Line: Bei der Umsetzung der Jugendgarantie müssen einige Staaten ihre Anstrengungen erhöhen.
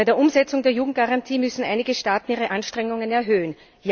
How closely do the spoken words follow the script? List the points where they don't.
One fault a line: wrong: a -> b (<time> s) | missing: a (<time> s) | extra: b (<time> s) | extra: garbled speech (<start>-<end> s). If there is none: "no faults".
no faults